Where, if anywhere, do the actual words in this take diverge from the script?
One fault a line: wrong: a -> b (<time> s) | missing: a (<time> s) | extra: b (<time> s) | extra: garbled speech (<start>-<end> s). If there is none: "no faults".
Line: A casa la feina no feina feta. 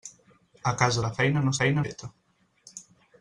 no faults